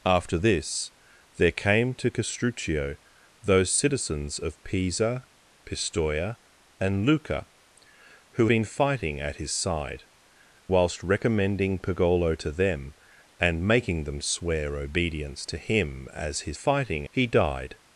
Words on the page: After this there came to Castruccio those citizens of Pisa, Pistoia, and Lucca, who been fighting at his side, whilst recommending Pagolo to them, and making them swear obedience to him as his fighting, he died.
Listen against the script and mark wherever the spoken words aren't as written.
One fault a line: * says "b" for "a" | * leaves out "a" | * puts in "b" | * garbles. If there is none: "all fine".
all fine